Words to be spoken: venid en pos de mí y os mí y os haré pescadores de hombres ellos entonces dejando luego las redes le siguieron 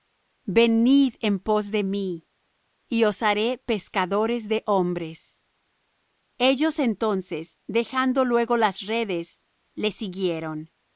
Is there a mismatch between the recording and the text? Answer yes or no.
yes